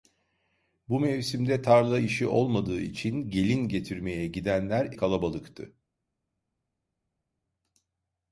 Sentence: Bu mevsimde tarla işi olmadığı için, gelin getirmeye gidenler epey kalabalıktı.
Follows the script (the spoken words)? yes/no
no